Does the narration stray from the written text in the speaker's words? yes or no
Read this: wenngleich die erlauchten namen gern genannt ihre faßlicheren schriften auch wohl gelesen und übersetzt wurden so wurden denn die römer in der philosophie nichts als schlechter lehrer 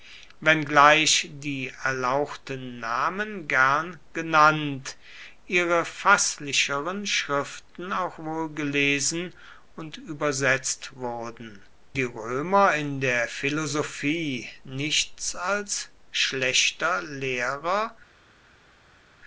yes